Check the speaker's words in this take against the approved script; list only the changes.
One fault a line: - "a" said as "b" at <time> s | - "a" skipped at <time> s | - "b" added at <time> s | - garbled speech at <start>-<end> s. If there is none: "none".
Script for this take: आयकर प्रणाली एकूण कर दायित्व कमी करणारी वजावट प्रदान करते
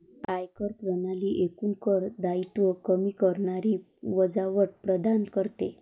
none